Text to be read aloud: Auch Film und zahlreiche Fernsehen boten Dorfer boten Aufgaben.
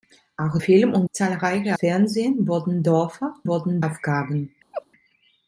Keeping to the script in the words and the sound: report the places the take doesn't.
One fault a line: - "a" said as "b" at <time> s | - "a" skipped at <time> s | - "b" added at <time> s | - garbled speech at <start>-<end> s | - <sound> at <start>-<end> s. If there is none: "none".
- laugh at 4.7-4.9 s